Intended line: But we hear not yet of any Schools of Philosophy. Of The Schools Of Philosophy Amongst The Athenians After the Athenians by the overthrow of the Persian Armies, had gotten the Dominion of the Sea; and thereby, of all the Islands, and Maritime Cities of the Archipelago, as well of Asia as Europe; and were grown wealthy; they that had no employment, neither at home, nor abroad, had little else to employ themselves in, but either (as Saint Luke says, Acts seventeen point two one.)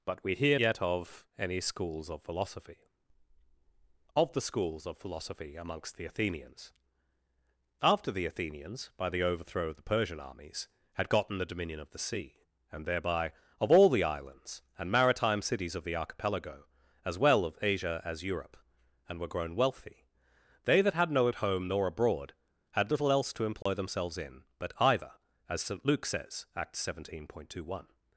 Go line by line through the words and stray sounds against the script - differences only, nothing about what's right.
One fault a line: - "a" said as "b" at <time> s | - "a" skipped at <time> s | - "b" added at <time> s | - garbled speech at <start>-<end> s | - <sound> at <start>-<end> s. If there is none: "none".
- "not" skipped at 0.6 s
- "employment neither" skipped at 21.3 s
- dropout at 23.6-23.7 s